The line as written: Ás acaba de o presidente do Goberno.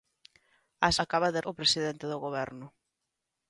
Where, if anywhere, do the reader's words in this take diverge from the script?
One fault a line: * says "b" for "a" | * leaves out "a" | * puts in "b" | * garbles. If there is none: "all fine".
all fine